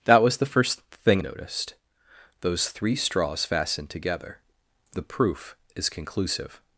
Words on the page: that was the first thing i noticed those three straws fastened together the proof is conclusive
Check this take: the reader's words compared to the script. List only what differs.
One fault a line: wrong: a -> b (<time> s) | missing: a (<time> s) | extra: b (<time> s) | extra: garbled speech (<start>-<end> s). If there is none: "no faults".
missing: i (1.2 s)